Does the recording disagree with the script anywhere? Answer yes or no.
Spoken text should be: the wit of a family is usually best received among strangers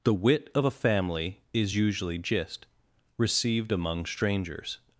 yes